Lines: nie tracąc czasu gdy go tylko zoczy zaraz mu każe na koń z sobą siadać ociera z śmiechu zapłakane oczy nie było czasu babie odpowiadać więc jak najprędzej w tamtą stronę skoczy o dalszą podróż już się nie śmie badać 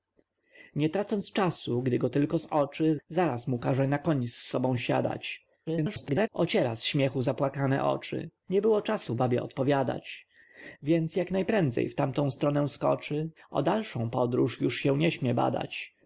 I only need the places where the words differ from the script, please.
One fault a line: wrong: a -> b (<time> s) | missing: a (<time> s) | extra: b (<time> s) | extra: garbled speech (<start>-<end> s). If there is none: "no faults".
extra: garbled speech (5.7-6.3 s)